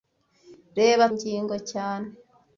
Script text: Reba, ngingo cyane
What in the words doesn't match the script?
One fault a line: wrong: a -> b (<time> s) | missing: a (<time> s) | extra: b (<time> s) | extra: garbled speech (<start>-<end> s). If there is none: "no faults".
no faults